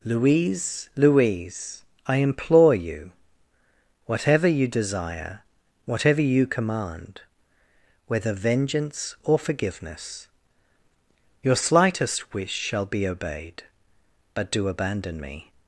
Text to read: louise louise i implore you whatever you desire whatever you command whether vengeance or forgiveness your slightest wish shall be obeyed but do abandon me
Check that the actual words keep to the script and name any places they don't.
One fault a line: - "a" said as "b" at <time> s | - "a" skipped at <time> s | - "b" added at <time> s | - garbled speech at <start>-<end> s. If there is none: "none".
none